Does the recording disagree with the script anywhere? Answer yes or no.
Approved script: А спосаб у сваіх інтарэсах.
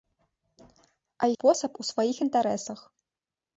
no